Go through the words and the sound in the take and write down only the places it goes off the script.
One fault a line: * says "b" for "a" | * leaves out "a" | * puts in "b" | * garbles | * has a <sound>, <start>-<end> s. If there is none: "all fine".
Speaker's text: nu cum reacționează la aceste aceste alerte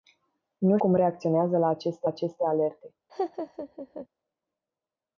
* has a laugh, 3.1-4.1 s